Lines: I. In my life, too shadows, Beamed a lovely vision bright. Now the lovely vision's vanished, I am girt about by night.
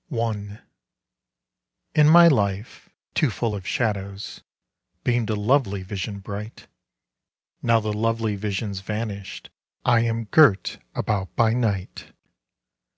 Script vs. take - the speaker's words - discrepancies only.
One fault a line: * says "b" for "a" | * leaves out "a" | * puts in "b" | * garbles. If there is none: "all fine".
* puts in "full of"